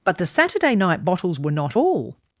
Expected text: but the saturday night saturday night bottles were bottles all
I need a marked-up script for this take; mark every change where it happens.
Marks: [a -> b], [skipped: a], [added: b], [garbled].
but the saturday night [skipped: saturday night] bottles were [bottles -> not] all